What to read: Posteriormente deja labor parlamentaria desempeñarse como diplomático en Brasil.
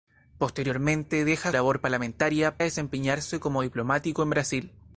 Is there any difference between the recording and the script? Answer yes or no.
no